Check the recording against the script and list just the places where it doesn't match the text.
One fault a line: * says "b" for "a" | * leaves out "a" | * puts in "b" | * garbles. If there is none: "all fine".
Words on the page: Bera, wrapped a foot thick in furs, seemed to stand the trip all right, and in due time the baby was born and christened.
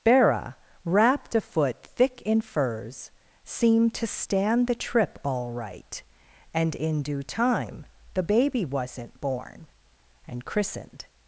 * says "wasn't" for "was"